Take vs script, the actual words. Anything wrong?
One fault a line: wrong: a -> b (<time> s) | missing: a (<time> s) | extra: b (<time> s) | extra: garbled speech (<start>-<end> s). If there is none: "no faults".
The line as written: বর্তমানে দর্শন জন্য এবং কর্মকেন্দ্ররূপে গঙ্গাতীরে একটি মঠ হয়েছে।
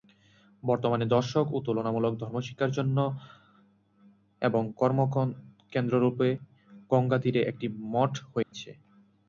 extra: ও তুলনামূলক ধর্মশিক্ষার (1.5 s)